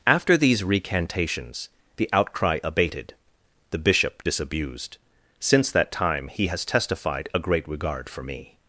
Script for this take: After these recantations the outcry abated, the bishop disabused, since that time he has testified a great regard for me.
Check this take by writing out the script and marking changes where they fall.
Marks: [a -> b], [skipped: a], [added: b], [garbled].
After these recantations the outcry abated, the bishop disabused, since that time he has testified a great regard for me.